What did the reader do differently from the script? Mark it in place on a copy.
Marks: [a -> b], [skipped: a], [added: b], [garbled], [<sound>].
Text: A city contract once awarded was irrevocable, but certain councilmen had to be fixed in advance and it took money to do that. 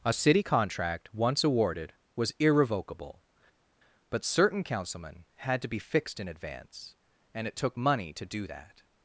A city contract once awarded was irrevocable, but certain councilmen had to be fixed in advance and it took money to do that.